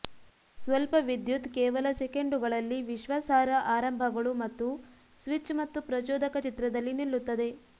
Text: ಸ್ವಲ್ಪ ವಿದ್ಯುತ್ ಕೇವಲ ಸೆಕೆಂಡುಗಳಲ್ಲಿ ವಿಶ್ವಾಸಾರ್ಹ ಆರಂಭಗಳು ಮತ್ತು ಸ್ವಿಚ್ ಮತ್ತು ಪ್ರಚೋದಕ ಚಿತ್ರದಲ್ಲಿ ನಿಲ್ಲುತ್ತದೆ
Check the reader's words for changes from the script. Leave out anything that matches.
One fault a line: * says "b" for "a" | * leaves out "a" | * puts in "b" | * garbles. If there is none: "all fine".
all fine